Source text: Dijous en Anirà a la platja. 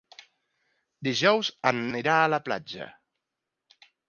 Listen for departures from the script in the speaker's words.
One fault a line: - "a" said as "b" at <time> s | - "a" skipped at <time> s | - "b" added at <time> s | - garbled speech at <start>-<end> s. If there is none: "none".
none